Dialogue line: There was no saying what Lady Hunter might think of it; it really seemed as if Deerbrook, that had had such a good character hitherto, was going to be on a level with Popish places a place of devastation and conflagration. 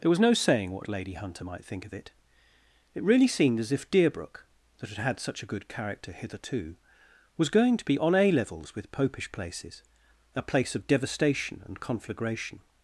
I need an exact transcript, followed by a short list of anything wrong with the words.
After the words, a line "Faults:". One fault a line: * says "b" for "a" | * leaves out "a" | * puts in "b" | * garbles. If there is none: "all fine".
There was no saying what Lady Hunter might think of it; it really seemed as if Deerbrook, that had had such a good character hitherto, was going to be on a levels with Popish places a place of devastation and conflagration.
Faults:
* says "levels" for "level"